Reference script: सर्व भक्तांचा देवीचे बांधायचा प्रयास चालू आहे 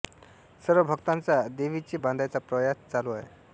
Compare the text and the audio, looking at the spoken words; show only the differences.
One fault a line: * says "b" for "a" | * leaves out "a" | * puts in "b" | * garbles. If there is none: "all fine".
all fine